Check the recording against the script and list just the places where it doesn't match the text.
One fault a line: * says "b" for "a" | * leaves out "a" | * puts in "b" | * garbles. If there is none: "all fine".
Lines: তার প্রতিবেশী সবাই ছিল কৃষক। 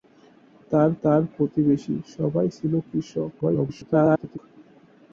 * puts in "তার"
* garbles